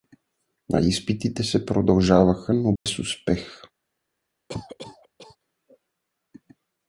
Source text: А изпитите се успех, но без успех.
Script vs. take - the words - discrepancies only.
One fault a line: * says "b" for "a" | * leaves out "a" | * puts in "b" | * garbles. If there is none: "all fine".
* says "продължаваха" for "успех"